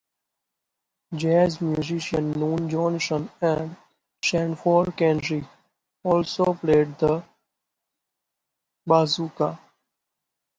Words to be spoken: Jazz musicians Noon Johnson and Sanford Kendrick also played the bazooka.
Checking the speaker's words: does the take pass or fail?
pass